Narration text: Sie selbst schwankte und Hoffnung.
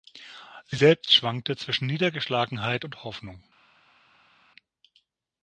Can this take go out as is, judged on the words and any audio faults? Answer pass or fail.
fail